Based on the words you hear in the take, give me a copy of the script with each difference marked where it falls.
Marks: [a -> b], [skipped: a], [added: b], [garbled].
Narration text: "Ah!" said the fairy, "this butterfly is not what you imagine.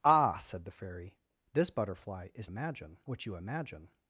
"Ah!" said the fairy, "this butterfly is [not -> imagine] what you imagine.